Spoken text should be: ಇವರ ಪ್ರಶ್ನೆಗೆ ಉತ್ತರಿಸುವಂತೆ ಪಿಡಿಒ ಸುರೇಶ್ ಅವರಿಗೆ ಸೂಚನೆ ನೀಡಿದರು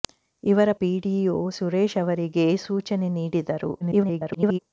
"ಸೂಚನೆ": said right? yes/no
yes